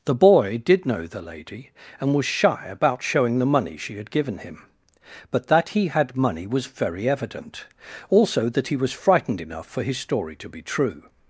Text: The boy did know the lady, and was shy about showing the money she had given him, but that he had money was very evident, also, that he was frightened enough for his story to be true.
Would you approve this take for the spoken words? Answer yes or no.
yes